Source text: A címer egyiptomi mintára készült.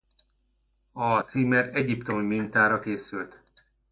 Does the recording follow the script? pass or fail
pass